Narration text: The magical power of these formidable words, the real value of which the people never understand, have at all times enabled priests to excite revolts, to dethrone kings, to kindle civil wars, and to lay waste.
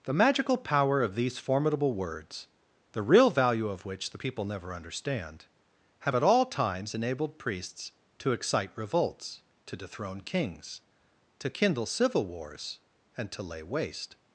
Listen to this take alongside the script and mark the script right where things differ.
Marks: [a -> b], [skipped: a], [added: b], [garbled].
The magical power of these formidable words, the real value of which the people never understand, have at all times enabled priests to excite revolts, to dethrone kings, to kindle civil wars, and to lay waste.